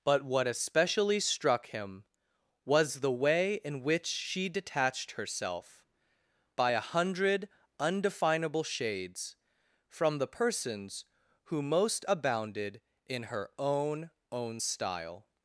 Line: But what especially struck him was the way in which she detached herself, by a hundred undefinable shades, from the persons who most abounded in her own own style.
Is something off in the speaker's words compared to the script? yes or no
no